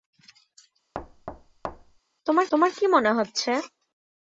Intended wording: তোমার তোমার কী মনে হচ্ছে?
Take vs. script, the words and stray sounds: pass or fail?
fail